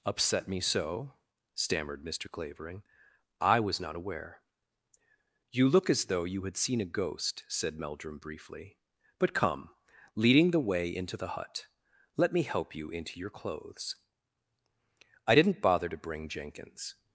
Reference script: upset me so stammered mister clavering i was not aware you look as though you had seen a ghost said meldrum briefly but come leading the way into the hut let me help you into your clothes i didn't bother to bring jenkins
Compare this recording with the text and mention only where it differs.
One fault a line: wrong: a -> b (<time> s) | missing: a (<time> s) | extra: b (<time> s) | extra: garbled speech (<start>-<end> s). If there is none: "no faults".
no faults